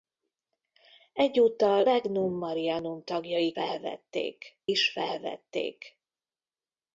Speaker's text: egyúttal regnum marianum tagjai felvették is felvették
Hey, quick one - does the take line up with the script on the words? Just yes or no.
yes